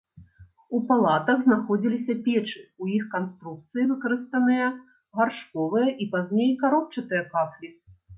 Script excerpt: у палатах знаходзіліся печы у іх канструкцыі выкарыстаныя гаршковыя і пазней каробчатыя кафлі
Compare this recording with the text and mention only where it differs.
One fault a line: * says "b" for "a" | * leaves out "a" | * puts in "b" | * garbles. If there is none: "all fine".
all fine